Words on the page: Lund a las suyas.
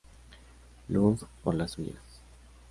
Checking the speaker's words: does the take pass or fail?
fail